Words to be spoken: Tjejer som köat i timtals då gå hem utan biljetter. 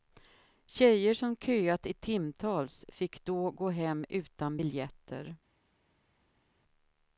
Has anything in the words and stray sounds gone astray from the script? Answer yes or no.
yes